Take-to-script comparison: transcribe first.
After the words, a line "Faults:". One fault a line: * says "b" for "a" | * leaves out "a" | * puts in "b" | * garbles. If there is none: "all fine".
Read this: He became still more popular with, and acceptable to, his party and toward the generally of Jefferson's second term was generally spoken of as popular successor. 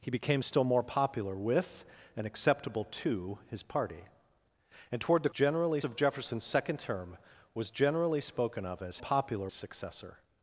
He became still more popular with, and acceptable to, his party and toward the generally of Jefferson's second term was generally spoken of as popular successor.
Faults:
all fine